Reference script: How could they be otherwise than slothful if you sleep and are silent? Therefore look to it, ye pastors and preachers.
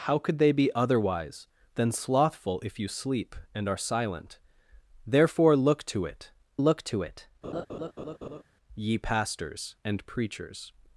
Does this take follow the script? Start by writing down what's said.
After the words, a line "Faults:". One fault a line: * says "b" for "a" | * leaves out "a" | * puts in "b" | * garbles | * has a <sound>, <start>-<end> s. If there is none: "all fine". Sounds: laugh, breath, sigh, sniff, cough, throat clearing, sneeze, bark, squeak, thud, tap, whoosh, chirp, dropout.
How could they be otherwise than slothful if you sleep and are silent? Therefore look to it look to it, ye pastors and preachers.
Faults:
* puts in "look to it"
* has a laugh, 7.4-8.4 s